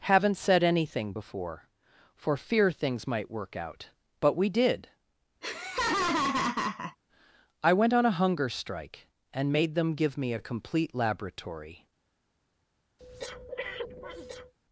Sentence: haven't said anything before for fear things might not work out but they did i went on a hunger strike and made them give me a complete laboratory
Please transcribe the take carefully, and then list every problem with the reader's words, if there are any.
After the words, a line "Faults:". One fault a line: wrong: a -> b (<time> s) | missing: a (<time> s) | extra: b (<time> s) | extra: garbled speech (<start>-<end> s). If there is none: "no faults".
haven't said anything before for fear things might work out but we did i went on a hunger strike and made them give me a complete laboratory
Faults:
missing: not (3.3 s)
wrong: they -> we (4.4 s)